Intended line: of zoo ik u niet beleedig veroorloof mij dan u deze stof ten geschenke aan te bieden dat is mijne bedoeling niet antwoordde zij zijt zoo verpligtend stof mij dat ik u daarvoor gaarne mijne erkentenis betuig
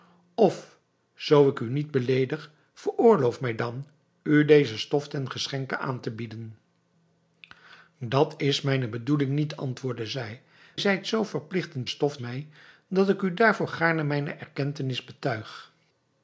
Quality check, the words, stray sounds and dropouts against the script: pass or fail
pass